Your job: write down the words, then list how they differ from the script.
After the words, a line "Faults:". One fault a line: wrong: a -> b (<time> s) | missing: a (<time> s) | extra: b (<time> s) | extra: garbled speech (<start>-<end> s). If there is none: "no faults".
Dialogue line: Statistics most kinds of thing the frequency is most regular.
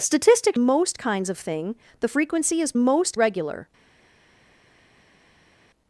Statistics most kinds of thing the frequency is most regular.
Faults:
no faults